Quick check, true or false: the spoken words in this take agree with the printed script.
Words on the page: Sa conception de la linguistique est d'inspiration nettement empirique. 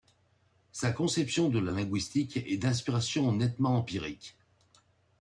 true